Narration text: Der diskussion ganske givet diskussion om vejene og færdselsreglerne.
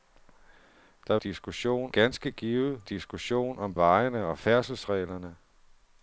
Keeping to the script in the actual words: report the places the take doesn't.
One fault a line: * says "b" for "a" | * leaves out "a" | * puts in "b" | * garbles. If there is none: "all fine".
all fine